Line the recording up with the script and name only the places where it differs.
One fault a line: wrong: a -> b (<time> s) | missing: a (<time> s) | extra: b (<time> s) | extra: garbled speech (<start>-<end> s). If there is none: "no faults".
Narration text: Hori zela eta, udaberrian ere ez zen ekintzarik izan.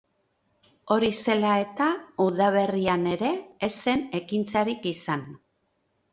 no faults